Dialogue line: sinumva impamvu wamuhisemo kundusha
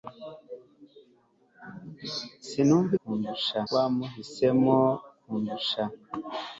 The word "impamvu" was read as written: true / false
false